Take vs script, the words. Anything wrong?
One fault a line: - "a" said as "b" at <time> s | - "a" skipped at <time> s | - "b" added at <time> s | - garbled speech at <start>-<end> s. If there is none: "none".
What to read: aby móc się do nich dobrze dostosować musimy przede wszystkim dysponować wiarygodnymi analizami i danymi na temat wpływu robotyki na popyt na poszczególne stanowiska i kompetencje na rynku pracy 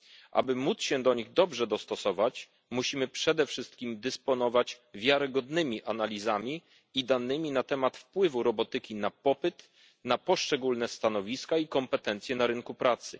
none